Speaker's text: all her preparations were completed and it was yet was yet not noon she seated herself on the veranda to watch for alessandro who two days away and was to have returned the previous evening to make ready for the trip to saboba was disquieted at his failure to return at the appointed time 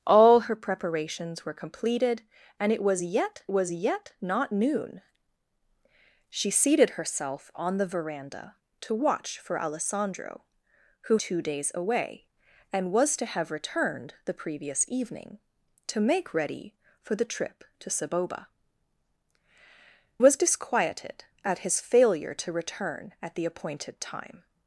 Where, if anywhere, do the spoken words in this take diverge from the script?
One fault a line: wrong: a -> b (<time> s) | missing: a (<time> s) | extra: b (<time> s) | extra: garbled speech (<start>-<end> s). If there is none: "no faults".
no faults